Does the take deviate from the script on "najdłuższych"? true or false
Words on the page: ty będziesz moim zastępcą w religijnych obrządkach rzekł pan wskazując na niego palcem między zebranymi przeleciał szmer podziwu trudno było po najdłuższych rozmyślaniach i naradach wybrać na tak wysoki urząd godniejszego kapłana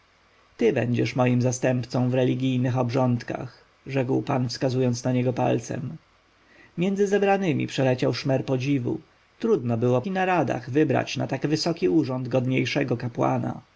true